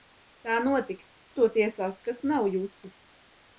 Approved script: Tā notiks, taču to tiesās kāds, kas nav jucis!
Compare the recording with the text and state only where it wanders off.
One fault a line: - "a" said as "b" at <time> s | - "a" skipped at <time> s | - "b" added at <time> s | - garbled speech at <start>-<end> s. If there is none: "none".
- "taču" skipped at 1.1 s
- "kāds" skipped at 2.0 s